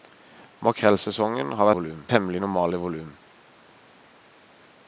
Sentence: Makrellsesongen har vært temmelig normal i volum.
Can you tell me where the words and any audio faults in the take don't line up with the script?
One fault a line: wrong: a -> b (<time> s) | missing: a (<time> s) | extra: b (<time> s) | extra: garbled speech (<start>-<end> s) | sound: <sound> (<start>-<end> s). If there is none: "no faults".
wrong: vært -> volum (1.8 s)